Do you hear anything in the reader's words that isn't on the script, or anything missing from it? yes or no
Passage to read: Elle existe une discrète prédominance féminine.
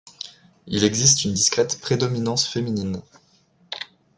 yes